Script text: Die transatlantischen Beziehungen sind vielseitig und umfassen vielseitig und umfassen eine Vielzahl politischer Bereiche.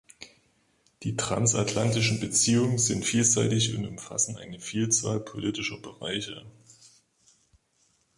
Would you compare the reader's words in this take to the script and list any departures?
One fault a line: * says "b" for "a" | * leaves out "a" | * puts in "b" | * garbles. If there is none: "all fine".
* leaves out "vielseitig und umfassen"